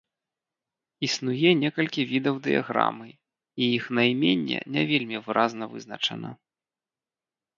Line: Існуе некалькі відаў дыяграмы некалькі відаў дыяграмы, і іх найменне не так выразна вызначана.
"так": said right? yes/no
no